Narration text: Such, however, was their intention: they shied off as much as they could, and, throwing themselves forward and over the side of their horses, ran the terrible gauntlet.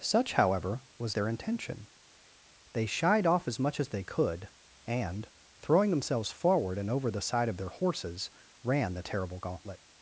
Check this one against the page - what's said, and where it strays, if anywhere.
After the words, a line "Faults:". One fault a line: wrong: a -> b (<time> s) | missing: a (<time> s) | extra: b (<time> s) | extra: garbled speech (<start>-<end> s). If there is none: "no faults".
Such, however, was their intention: they shied off as much as they could, and, throwing themselves forward and over the side of their horses, ran the terrible gauntlet.
Faults:
no faults